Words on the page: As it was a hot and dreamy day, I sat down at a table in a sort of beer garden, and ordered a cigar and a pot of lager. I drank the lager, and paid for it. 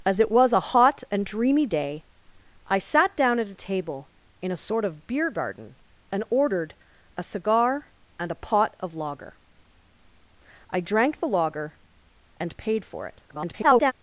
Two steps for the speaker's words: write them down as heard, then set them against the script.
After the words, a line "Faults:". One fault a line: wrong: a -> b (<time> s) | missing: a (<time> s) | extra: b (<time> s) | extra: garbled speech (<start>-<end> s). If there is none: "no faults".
As it was a hot and dreamy day, I sat down at a table in a sort of beer garden, and ordered a cigar and a pot of lager. I drank the lager, and paid for it. [garbled]
Faults:
extra: garbled speech (13.3-13.9 s)